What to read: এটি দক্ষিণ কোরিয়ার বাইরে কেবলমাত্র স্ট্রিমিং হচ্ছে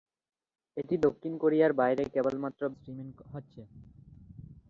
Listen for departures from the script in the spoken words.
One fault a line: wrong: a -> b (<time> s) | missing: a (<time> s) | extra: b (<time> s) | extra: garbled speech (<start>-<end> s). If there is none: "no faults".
no faults